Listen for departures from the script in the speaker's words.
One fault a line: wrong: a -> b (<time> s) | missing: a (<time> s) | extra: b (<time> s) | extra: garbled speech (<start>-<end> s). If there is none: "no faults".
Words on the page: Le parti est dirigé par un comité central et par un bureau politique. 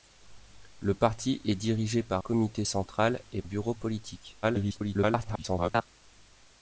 missing: un (2.2 s)
missing: par un (3.4 s)
extra: garbled speech (4.4-5.9 s)